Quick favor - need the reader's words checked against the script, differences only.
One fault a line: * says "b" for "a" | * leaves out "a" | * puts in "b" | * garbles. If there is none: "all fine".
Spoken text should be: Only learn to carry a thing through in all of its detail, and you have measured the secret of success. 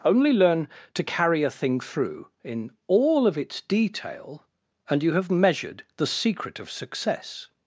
all fine